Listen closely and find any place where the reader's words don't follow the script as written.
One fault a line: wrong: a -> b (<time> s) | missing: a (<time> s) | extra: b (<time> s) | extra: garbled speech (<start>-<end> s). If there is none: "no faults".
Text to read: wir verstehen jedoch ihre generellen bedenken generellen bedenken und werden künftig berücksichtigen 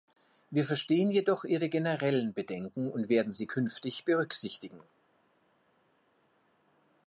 missing: generellen bedenken (2.9 s)
extra: sie (3.3 s)